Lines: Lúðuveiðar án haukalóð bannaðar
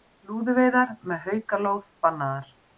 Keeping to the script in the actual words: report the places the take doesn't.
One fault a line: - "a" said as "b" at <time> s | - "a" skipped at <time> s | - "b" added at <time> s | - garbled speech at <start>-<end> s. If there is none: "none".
- "án" said as "með" at 1.1 s